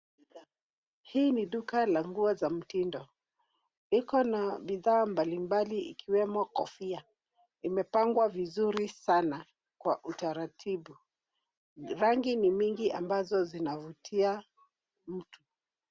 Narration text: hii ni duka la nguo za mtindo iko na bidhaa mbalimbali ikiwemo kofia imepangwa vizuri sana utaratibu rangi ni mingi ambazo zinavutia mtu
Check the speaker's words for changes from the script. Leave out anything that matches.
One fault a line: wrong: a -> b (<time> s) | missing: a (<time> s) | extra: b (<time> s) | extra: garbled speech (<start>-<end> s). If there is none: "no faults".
extra: kwa (9.8 s)